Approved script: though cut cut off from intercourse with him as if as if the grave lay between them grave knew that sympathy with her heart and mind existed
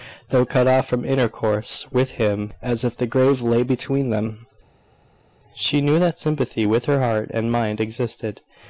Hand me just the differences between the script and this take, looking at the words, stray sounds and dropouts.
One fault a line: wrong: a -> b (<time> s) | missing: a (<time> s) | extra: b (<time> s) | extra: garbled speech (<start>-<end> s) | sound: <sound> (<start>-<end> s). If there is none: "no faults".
missing: cut (0.7 s)
missing: as if (2.9 s)
wrong: grave -> she (5.6 s)